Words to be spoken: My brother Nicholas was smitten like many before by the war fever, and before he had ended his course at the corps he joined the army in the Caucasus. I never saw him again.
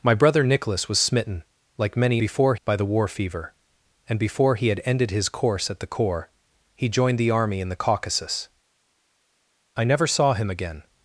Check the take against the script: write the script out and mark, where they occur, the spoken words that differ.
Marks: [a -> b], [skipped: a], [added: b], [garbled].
My brother Nicholas was smitten like many before by the war fever, and before he had ended his course at the corps he joined the army in the Caucasus. I never saw him again.